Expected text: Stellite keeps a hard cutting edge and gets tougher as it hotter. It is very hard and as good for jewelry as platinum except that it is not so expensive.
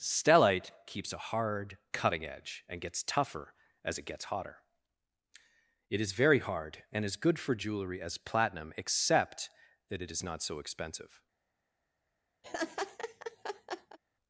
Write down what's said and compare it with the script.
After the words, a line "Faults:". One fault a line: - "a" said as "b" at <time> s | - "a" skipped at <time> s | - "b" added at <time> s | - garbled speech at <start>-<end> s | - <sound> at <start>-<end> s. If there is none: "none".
Stellite keeps a hard cutting edge and gets tougher as it gets hotter. It is very hard and as good for jewelry as platinum except that it is not so expensive.
Faults:
- "gets" added at 4.0 s
- laugh at 12.4-14.0 s